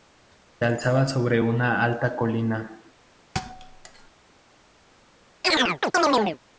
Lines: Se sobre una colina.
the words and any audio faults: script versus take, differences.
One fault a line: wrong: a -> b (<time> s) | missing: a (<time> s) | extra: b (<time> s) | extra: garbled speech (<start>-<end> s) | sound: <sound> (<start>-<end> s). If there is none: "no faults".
extra: alzaba (0.7 s)
extra: alta (1.8 s)
sound: thud (3.3-4.1 s)
sound: chirp (5.4-6.4 s)